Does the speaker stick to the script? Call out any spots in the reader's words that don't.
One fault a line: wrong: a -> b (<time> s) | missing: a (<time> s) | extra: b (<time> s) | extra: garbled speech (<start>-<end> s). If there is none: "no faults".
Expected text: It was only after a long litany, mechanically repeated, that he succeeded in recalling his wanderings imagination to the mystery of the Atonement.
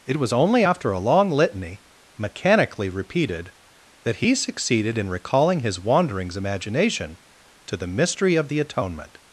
no faults